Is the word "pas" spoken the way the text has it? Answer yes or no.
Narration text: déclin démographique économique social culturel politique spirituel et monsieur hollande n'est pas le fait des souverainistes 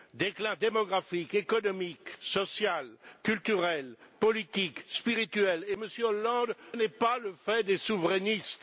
yes